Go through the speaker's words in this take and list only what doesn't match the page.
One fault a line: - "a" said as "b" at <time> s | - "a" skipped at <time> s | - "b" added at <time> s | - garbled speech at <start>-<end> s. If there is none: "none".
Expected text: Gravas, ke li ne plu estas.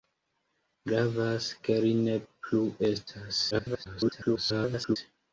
- garbled speech at 3.5-5.0 s